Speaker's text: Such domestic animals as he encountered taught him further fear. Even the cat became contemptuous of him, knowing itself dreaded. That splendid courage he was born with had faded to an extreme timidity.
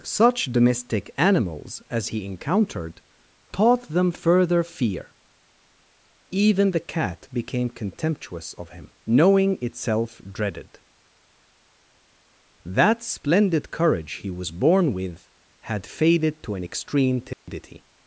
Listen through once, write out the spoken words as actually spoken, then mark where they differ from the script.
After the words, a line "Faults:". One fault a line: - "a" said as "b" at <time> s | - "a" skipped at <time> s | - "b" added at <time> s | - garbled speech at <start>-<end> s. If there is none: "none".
Such domestic animals as he encountered taught them further fear. Even the cat became contemptuous of him, knowing itself dreaded. That splendid courage he was born with had faded to an extreme timidity.
Faults:
- "him" said as "them" at 3.9 s